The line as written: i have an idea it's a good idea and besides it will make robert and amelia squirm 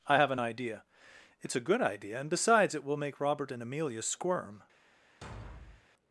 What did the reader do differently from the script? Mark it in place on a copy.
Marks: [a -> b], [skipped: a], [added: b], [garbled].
i have an idea it's a good idea and besides it will make robert and amelia squirm